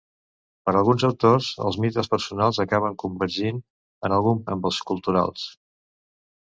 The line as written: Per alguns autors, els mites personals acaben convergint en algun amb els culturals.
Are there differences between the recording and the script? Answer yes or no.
no